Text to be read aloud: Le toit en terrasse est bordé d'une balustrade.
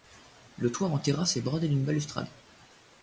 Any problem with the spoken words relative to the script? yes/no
no